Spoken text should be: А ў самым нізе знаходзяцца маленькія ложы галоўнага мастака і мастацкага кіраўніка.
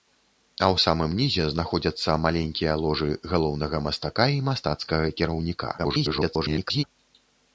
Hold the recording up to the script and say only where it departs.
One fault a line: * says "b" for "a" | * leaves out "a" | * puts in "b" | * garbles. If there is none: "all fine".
* garbles